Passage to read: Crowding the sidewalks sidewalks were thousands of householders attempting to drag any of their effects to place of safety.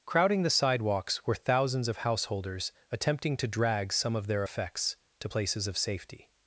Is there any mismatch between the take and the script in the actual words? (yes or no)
yes